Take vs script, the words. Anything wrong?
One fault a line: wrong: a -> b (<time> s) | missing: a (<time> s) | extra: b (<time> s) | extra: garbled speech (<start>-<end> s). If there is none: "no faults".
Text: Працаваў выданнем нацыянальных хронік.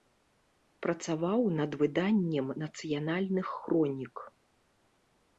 extra: над (1.6 s)